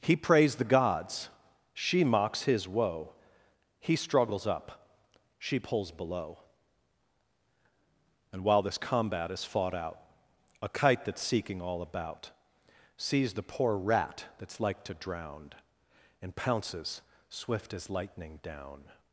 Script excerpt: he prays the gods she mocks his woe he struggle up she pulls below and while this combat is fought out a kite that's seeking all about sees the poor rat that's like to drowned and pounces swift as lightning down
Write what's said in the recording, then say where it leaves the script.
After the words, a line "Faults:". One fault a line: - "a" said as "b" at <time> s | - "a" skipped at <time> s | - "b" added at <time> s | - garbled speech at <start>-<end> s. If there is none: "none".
he prays the gods she mocks his woe he struggles up she pulls below and while this combat is fought out a kite that's seeking all about sees the poor rat that's like to drown and pounces swift as lightning down
Faults:
- "struggle" said as "struggles" at 4.0 s
- "drowned" said as "drown" at 14.9 s